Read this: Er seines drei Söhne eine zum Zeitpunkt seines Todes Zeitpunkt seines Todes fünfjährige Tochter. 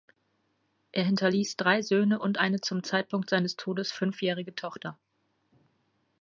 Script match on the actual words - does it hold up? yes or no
no